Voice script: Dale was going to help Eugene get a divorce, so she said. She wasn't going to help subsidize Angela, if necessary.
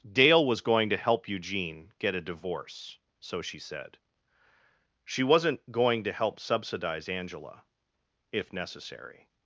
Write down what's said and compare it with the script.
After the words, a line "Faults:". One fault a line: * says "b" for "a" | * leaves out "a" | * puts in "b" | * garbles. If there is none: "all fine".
Dale was going to help Eugene get a divorce, so she said. She wasn't going to help subsidize Angela, if necessary.
Faults:
all fine